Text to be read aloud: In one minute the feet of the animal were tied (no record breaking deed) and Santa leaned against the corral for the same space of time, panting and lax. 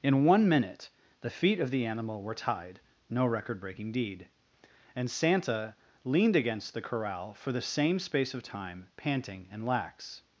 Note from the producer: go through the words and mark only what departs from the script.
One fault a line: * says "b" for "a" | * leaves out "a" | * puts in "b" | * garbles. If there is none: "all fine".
all fine